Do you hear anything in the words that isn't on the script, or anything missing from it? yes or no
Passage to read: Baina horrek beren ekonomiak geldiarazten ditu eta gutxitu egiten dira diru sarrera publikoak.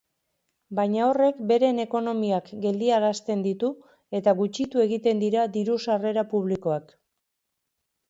no